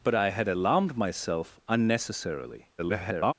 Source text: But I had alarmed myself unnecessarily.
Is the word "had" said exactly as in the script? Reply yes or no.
yes